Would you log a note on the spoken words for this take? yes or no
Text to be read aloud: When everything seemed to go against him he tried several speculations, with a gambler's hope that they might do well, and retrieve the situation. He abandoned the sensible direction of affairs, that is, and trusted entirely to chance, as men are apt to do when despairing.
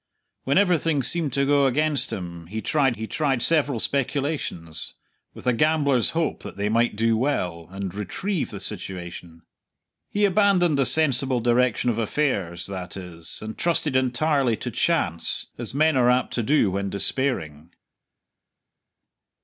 yes